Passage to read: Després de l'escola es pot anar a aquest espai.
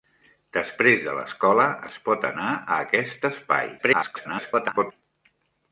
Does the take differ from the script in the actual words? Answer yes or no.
yes